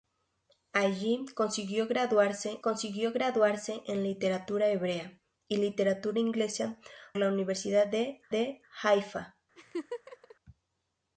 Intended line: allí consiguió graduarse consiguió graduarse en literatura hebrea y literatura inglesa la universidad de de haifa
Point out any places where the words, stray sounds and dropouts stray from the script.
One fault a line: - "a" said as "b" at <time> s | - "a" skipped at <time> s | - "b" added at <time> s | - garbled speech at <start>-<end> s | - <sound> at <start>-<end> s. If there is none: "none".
- laugh at 9.6-10.4 s